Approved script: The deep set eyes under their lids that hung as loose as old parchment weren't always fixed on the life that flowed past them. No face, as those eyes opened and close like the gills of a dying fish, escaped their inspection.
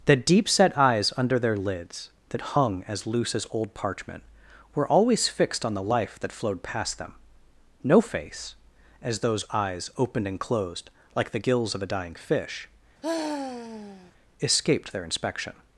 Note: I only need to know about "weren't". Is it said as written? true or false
false